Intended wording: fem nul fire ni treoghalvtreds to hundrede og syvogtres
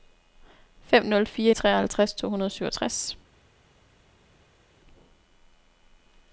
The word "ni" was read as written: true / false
false